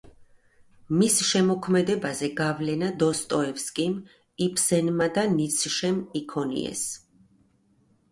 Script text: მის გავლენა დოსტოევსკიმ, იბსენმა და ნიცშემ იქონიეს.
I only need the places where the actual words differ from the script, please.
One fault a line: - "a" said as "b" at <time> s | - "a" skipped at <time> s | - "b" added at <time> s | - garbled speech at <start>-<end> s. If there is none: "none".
- "შემოქმედებაზე" added at 1.3 s